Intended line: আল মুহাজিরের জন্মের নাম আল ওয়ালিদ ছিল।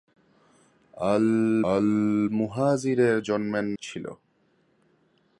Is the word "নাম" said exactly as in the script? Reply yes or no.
no